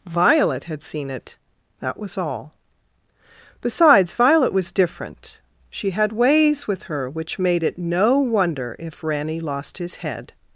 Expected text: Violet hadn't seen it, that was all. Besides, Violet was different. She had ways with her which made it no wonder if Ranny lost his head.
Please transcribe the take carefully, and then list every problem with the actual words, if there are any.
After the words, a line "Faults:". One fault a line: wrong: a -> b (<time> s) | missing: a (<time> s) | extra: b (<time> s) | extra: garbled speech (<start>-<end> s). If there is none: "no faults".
Violet had seen it, that was all. Besides, Violet was different. She had ways with her which made it no wonder if Ranny lost his head.
Faults:
wrong: hadn't -> had (0.7 s)